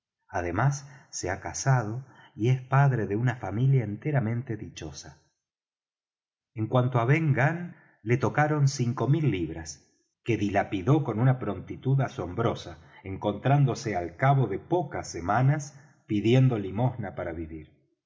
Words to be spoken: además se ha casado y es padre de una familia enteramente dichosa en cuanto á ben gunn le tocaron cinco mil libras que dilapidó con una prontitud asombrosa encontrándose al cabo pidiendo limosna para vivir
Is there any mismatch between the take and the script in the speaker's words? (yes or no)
yes